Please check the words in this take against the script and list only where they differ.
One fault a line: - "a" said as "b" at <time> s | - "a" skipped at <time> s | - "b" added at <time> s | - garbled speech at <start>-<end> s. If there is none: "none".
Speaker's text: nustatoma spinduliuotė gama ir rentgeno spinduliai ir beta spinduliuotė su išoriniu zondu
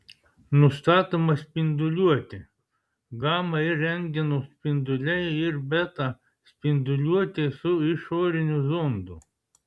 none